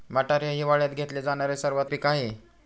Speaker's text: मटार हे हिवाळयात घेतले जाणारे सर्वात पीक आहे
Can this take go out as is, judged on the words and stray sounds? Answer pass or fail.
pass